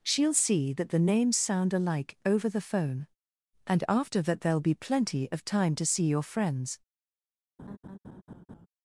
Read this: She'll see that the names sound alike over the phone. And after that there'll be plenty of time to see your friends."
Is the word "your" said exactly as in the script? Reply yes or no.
yes